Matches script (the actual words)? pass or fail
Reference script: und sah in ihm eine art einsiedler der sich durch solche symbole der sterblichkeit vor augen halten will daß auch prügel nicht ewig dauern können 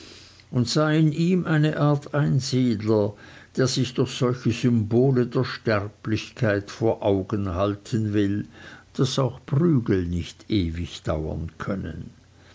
pass